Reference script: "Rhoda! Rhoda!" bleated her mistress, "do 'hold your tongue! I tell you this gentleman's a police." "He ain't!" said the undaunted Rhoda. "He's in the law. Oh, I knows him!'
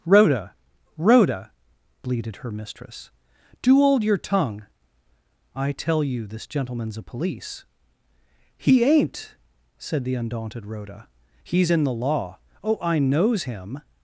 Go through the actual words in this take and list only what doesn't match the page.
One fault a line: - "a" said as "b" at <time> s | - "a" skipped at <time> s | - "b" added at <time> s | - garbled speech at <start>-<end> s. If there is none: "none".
none